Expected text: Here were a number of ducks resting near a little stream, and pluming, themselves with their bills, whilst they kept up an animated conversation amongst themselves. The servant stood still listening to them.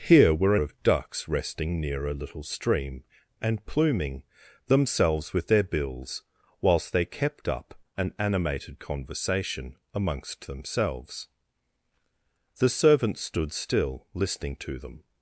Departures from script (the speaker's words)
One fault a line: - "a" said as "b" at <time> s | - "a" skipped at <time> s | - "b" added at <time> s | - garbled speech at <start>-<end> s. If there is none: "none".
- "number" skipped at 0.6 s